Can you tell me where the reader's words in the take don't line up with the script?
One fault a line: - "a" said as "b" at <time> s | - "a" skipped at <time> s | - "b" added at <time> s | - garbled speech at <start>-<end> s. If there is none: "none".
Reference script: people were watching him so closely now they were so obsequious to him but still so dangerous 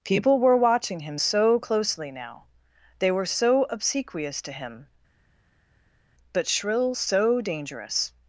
- "still" said as "shrill" at 6.5 s